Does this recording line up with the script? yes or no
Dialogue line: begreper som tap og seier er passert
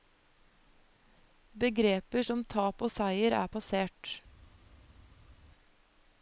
yes